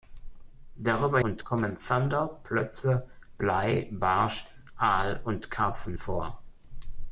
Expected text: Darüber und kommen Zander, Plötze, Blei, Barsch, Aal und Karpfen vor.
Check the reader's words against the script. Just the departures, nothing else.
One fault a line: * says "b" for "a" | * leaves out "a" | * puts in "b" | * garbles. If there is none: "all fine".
all fine